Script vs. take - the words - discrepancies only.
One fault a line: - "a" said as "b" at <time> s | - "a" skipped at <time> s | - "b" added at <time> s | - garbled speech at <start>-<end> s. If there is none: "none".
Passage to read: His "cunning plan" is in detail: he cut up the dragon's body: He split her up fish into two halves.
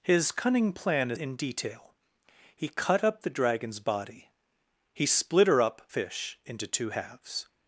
none